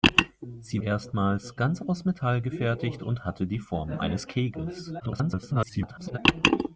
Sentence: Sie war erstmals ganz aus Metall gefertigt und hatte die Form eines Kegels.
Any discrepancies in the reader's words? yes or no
yes